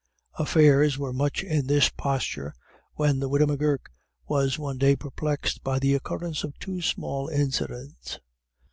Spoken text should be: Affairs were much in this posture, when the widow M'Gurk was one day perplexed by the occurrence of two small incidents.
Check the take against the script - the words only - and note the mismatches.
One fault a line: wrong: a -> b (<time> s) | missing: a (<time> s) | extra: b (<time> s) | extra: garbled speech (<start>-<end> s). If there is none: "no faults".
no faults